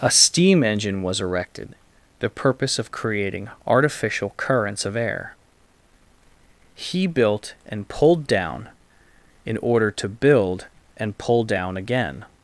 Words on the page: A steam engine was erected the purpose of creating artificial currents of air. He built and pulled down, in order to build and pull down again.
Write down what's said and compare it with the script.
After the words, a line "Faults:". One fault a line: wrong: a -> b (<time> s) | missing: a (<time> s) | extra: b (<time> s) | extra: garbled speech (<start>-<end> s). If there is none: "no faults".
A steam engine was erected the purpose of creating artificial currents of air. He built and pulled down, in order to build and pull down again.
Faults:
no faults